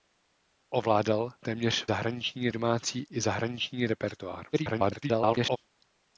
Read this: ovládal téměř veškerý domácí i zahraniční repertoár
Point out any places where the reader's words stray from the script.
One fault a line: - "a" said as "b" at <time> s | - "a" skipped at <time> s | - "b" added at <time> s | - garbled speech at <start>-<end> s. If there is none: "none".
- "veškerý" said as "zahraniční" at 1.8 s
- garbled speech at 4.5-5.6 s